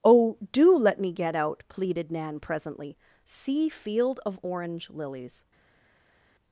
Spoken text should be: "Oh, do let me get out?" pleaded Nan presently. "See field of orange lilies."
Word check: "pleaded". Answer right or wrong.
right